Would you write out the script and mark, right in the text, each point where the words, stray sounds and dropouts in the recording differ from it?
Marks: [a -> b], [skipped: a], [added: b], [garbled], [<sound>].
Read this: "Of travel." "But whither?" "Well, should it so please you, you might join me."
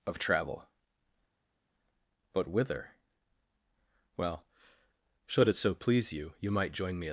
"Of travel." "But whither?" "Well, should it so please you, you might join me."